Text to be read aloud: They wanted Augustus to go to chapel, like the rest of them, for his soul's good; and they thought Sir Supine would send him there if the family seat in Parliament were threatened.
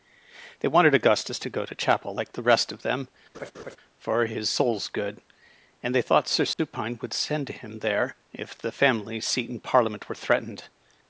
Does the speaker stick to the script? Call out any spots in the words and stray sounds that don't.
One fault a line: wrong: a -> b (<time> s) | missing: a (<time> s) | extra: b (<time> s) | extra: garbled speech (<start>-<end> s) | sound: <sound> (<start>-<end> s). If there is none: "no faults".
sound: laugh (3.3-3.8 s)
sound: dropout (6.5-6.6 s)